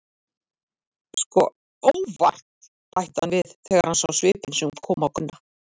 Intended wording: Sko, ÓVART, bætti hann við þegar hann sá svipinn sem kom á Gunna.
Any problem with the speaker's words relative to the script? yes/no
no